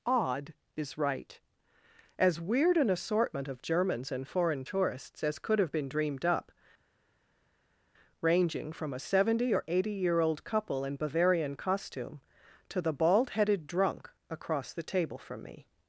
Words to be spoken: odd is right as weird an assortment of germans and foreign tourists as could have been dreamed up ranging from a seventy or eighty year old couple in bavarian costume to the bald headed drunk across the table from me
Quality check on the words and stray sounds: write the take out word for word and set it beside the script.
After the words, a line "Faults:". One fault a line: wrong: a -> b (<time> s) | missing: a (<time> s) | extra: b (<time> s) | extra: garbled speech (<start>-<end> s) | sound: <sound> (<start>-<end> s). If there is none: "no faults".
odd is right as weird an assortment of germans and foreign tourists as could have been dreamed up ranging from a seventy or eighty year old couple in bavarian costume to the bald headed drunk across the table from me
Faults:
no faults